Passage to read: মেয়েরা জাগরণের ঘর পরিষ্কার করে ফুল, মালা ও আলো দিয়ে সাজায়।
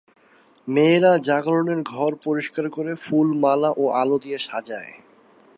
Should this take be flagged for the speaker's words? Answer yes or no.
no